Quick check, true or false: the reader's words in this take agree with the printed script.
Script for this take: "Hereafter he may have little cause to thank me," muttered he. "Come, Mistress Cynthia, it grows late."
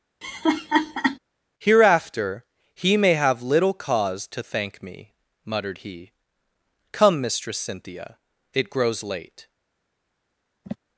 true